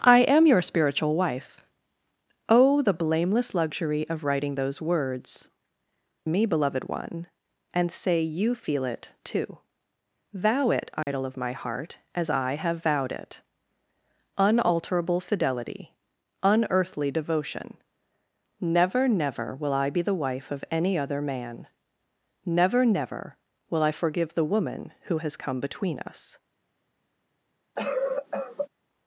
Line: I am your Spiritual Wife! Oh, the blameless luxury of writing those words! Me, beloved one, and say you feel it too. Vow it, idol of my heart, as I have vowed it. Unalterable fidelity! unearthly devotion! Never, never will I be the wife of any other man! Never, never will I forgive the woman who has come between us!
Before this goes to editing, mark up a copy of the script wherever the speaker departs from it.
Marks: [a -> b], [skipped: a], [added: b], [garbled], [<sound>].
I am your Spiritual Wife! Oh, the blameless luxury of writing those words! Me, beloved one, and say you feel it too. Vow it, idol [dropout] of my heart, as I have vowed it. Unalterable fidelity! unearthly devotion! Never, never will I be the wife of any other man! Never, never will I forgive the woman who has come between us! [cough]